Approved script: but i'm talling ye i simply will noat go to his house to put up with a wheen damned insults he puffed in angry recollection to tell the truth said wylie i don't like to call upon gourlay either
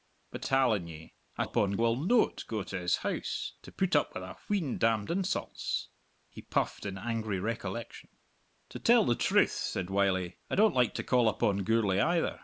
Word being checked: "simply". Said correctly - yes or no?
no